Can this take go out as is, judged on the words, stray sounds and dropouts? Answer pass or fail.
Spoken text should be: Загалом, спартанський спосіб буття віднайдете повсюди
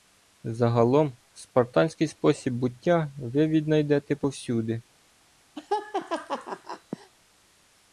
fail